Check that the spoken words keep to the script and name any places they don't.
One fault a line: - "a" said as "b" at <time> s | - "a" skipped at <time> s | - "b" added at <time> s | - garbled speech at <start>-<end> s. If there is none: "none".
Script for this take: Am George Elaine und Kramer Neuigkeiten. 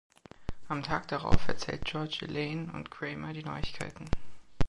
- "Tag darauf erzählt" added at 0.8 s
- "die" added at 3.3 s